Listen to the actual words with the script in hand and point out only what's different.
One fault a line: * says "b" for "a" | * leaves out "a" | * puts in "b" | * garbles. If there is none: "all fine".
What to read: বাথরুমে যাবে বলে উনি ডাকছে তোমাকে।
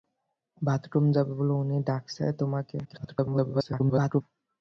* garbles